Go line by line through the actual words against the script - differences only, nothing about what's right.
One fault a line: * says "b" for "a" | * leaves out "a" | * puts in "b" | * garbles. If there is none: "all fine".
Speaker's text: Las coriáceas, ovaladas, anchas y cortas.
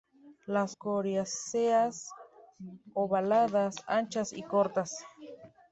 all fine